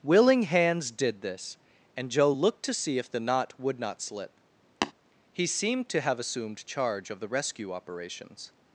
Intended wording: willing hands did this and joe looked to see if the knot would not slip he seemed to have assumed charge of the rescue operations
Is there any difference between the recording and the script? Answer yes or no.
no